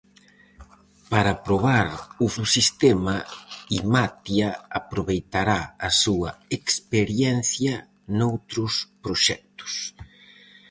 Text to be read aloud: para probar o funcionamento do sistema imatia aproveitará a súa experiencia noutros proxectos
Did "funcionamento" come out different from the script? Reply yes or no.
yes